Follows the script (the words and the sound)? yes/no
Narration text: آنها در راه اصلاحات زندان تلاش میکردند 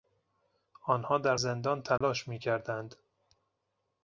no